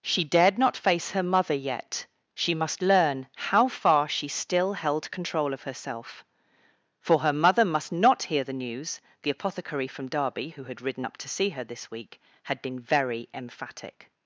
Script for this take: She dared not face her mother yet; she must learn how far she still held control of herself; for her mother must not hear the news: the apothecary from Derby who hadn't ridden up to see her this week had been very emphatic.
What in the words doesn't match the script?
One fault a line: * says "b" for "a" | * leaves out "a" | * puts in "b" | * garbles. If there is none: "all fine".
* says "had" for "hadn't"